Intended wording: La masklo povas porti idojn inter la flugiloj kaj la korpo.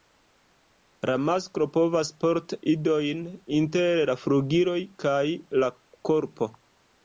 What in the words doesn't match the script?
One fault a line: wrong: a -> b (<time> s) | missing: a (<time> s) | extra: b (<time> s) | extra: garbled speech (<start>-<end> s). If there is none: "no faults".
no faults